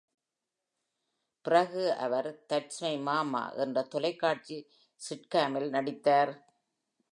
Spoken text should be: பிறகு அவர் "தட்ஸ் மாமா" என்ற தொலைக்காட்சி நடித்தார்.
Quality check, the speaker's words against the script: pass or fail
fail